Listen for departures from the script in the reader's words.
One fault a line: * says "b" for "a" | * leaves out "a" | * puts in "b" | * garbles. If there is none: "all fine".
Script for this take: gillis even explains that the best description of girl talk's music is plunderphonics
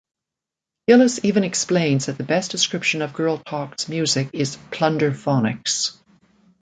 all fine